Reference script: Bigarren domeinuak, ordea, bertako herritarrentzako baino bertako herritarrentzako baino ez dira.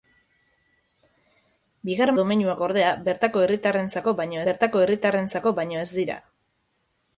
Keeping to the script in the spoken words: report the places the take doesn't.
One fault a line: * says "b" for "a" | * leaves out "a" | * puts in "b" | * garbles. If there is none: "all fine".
all fine